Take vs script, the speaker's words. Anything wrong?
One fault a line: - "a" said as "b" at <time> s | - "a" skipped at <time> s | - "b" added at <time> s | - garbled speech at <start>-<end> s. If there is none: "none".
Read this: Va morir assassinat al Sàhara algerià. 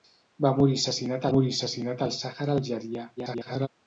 - "morir assassinat" added at 1.3 s
- garbled speech at 3.2-3.7 s